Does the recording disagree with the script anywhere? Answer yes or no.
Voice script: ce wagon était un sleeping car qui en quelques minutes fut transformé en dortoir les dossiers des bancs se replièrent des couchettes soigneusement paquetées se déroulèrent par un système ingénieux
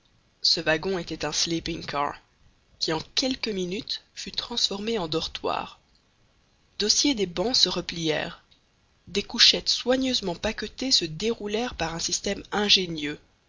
yes